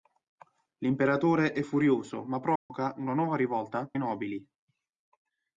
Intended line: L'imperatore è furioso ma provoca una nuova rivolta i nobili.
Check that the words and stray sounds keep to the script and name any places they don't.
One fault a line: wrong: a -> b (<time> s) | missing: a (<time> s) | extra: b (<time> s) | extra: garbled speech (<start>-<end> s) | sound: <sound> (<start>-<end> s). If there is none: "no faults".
sound: dropout (2.6-2.7 s)